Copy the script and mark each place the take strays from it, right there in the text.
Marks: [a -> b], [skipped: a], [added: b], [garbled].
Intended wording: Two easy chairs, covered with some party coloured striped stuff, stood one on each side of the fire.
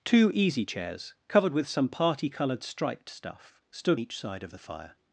Two easy chairs, covered with some party coloured striped stuff, stood [skipped: one on] each side of the fire.